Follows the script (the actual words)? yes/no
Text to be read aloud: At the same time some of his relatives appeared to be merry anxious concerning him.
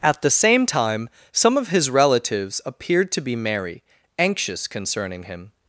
yes